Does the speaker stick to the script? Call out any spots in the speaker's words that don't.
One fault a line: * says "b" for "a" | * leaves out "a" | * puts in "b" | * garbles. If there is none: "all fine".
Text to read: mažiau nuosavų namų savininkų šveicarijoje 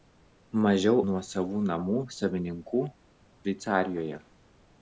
all fine